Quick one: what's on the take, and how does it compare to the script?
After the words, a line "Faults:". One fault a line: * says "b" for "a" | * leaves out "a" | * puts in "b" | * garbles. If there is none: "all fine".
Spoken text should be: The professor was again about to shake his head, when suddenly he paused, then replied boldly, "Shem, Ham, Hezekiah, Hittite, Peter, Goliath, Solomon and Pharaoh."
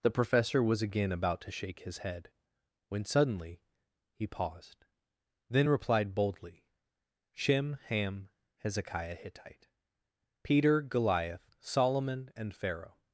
The professor was again about to shake his head, when suddenly he paused, then replied boldly, "Shem, Ham, Hezekiah, Hittite, Peter, Goliath, Solomon and Pharaoh."
Faults:
all fine